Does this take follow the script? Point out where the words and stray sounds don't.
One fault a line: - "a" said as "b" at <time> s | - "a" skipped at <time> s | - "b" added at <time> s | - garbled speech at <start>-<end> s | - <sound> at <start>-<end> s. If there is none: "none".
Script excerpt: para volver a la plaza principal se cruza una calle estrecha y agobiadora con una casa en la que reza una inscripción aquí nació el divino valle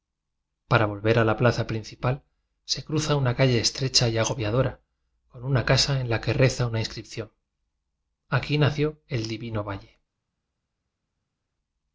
none